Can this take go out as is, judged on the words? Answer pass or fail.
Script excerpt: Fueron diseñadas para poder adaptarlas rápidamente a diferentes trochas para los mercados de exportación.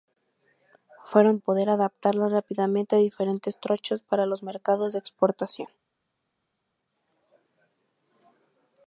fail